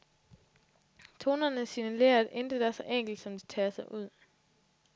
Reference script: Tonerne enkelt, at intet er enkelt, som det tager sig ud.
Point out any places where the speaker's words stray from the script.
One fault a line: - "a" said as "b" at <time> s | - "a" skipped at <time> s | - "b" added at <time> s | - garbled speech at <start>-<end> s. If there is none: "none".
- "enkelt" said as "signalerer" at 1.6 s
- "så" added at 2.7 s